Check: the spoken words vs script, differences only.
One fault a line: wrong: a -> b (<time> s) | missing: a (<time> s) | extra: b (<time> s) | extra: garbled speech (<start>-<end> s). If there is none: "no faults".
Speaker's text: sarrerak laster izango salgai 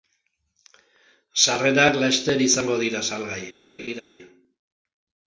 extra: dira (2.9 s)